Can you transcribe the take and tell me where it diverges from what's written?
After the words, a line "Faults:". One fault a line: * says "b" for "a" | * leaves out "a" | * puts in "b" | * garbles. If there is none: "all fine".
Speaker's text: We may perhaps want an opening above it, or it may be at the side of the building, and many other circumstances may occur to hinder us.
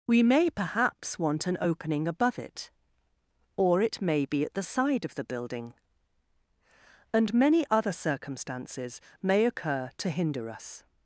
We may perhaps want an opening above it, or it may be at the side of the building, and many other circumstances may occur to hinder us.
Faults:
all fine